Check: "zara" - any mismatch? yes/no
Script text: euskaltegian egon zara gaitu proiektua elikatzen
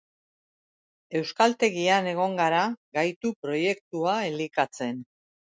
yes